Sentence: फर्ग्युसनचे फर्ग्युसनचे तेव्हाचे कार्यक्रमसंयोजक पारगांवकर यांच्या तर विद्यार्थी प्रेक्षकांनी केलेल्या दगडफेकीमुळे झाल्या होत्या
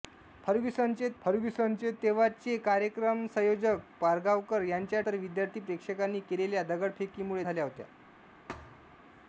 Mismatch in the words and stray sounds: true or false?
true